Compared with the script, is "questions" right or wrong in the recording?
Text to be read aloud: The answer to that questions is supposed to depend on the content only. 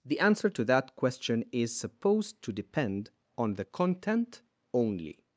wrong